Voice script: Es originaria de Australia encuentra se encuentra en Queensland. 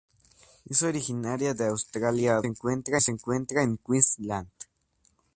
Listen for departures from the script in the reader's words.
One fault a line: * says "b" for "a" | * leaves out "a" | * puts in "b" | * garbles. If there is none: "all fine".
all fine